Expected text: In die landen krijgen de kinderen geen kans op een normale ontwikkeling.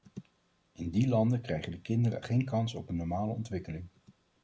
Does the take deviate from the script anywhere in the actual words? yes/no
no